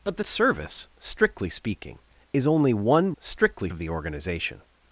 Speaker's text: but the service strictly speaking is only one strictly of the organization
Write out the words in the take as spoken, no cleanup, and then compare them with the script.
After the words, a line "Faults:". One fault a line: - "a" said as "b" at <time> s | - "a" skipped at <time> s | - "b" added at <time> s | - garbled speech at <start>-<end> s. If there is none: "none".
but the service strictly speaking is only one strictly of the organization
Faults:
none